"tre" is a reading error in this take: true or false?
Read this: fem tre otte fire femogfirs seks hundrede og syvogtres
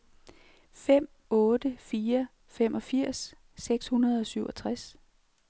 true